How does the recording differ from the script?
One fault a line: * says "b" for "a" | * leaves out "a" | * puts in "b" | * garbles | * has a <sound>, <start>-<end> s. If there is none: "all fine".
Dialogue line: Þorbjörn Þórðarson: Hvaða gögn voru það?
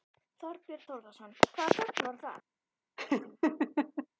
* has a laugh, 3.0-4.1 s